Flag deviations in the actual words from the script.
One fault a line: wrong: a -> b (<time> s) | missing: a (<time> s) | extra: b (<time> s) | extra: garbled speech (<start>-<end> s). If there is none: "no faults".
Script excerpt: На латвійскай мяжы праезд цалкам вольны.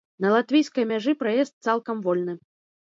no faults